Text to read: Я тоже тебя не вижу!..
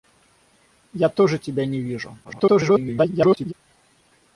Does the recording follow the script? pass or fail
fail